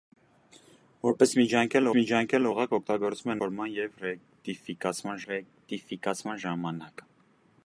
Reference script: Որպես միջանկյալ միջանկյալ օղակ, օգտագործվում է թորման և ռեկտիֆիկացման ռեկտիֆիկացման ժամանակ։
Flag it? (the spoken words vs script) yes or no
no